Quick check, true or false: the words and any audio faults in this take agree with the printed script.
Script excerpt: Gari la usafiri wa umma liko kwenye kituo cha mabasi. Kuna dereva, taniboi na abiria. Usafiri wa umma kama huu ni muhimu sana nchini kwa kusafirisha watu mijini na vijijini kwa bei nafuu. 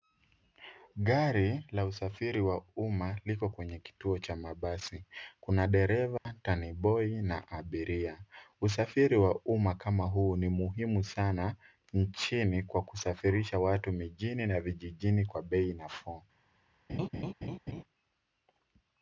false